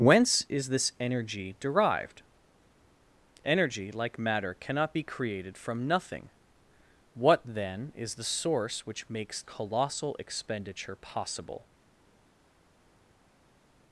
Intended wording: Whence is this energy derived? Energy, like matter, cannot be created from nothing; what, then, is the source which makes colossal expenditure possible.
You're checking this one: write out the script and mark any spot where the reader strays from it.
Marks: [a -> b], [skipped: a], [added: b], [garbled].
Whence is this energy derived? Energy, like matter, cannot be created from nothing; what, then, is the source which makes colossal expenditure possible.